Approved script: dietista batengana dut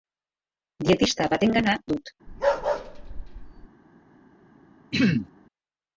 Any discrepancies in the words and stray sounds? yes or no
yes